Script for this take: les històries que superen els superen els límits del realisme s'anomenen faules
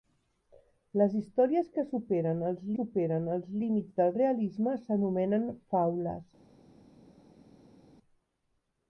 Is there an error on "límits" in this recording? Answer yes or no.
no